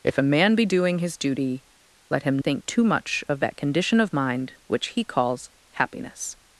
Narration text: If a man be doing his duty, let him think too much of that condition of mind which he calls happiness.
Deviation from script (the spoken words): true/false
false